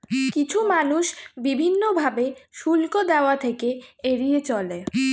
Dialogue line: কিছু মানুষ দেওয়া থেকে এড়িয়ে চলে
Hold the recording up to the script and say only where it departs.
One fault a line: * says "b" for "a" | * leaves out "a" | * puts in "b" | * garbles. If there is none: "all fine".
* puts in "বিভিন্ন ভাবে শুল্ক"